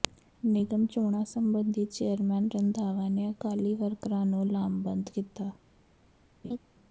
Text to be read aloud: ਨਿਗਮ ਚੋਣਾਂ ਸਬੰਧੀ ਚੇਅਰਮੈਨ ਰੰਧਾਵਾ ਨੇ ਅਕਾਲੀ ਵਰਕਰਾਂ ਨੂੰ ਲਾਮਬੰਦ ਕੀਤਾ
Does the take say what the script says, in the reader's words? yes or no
yes